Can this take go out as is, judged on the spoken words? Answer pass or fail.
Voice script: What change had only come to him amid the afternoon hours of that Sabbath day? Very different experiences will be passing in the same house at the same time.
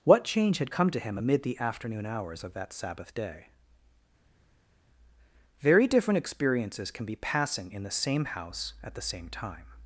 fail